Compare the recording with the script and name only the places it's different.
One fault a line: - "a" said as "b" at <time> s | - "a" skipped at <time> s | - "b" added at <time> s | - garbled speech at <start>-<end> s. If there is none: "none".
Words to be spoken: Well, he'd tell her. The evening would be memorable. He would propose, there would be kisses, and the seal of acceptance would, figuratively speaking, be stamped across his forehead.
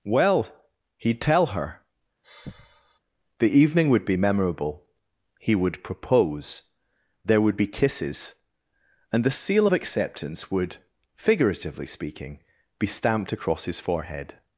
none